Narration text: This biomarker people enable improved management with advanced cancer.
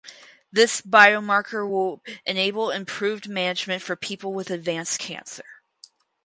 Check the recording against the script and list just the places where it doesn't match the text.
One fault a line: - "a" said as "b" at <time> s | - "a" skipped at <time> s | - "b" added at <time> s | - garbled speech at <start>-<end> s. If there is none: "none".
- "people" said as "will" at 1.7 s
- "for people" added at 3.8 s